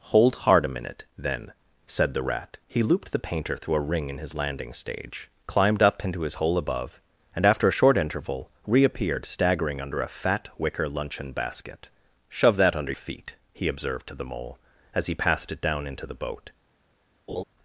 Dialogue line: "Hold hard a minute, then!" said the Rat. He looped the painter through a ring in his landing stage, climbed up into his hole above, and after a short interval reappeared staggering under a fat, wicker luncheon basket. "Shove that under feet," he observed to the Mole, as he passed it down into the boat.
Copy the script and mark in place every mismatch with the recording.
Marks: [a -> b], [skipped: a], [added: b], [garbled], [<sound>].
"Hold hard a minute, then!" said the Rat. He looped the painter through a ring in his landing stage, climbed up into his hole above, and after a short interval reappeared staggering under a fat, wicker luncheon basket. "Shove that under feet," he observed to the Mole, as he passed it down into the boat. [laugh]